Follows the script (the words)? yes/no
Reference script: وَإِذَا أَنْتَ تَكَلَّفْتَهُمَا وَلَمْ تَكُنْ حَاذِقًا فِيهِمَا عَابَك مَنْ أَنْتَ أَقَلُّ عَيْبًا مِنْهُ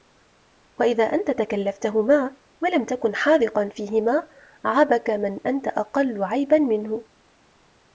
yes